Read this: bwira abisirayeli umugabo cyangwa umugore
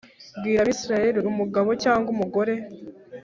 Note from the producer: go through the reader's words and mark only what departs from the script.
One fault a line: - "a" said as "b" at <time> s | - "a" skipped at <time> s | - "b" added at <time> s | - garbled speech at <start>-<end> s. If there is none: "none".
none